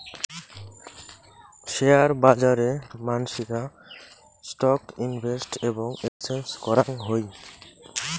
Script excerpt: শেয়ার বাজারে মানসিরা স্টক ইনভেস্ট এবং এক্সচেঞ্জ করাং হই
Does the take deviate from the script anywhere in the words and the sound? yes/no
yes